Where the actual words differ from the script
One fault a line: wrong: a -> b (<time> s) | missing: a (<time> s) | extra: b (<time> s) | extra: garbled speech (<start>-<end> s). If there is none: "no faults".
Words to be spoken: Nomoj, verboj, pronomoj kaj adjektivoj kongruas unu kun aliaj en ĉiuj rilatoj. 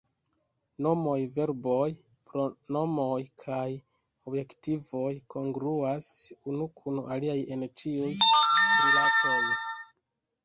no faults